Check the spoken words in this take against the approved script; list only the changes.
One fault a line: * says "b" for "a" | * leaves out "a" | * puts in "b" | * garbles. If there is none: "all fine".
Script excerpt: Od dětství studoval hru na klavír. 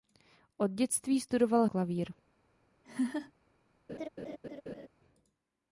* leaves out "hru na"